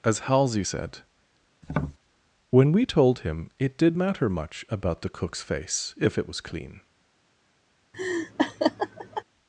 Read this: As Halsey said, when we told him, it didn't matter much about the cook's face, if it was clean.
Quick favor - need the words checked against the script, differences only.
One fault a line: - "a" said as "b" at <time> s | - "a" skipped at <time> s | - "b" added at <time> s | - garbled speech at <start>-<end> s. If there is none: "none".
- "didn't" said as "did" at 3.8 s